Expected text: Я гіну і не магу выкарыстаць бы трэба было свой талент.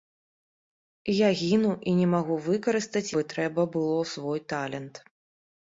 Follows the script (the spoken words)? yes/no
yes